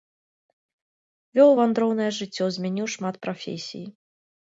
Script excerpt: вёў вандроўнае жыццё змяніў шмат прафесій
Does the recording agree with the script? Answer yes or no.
yes